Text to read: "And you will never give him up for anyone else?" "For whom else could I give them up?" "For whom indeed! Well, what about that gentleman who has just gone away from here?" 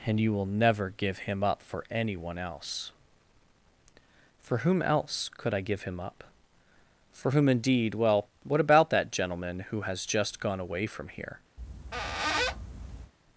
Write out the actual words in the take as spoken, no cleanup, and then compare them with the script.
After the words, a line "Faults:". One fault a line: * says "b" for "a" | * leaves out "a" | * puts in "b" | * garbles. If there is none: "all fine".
"And you will never give him up for anyone else?" "For whom else could I give him up?" "For whom indeed! Well, what about that gentleman who has just gone away from here?"
Faults:
* says "him" for "them"